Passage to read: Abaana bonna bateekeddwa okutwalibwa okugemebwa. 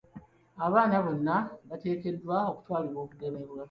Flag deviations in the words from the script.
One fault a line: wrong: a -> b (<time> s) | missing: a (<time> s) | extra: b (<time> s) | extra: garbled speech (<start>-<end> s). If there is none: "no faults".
no faults